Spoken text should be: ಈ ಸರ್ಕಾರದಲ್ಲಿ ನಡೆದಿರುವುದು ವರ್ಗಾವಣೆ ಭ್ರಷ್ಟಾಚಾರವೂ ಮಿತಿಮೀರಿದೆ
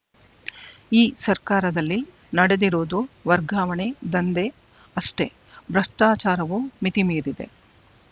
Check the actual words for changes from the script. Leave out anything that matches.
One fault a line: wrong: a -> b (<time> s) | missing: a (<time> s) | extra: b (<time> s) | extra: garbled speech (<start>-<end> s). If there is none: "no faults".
extra: ದಂಧೆ ಅಷ್ಟೇ (4.1 s)